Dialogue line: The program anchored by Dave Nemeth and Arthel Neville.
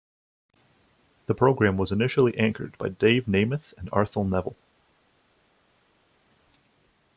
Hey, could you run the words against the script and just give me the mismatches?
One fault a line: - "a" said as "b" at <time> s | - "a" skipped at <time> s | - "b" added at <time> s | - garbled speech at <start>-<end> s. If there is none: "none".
- "was initially" added at 1.8 s